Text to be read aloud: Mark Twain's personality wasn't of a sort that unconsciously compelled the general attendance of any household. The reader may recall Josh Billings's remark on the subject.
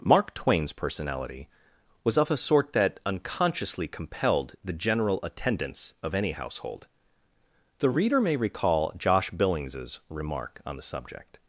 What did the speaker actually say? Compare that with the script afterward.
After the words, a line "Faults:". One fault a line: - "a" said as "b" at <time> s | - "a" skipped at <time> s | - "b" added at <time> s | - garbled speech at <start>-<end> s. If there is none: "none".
Mark Twain's personality was of a sort that unconsciously compelled the general attendance of any household. The reader may recall Josh Billings's remark on the subject.
Faults:
- "wasn't" said as "was" at 2.0 s